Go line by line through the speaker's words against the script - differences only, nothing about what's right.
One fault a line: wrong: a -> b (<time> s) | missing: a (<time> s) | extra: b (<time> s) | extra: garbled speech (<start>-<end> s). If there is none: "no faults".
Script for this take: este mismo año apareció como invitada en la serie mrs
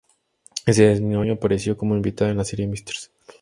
wrong: este -> ese (0.7 s)